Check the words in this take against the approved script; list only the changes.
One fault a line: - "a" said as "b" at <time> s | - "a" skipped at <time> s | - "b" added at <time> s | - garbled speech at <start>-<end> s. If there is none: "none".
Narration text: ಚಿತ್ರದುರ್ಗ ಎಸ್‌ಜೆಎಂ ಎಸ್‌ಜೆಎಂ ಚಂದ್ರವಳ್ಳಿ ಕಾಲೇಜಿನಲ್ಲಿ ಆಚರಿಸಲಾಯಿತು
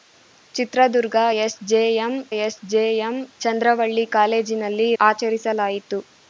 none